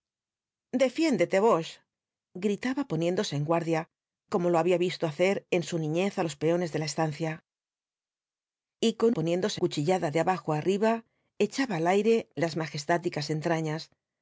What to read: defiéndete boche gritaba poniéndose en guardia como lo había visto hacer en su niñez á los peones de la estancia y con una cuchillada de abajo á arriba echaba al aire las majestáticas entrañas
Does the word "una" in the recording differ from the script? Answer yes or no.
yes